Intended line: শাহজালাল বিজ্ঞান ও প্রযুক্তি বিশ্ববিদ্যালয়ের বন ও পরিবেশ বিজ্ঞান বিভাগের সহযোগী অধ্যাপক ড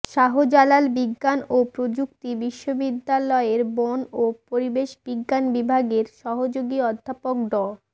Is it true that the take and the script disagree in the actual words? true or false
false